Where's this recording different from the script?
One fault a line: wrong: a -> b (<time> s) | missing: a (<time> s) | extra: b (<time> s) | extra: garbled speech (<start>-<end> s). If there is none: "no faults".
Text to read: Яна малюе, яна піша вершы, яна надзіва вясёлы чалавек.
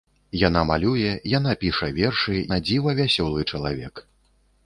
missing: яна (2.4 s)